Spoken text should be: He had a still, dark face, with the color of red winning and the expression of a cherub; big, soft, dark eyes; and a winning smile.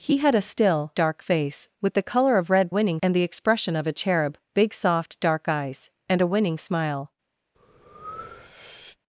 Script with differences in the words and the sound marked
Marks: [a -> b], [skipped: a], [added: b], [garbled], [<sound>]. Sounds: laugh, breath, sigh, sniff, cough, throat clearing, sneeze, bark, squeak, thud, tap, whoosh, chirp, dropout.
He had a still, dark face, with the color of red winning and the expression of a cherub; big, soft, dark eyes; and a winning smile. [breath]